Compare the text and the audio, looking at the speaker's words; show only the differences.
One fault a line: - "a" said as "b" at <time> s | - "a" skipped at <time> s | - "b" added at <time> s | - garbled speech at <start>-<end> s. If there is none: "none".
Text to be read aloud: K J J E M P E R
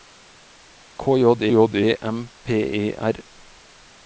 none